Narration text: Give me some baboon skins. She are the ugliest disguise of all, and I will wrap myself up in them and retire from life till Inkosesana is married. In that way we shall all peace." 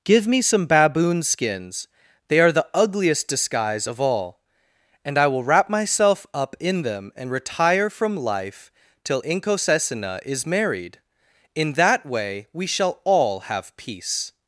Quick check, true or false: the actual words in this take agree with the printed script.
false